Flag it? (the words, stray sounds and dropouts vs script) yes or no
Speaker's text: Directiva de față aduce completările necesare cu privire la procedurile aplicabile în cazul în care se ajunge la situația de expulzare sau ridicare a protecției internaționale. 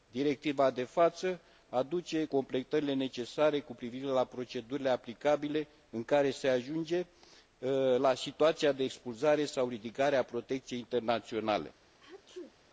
yes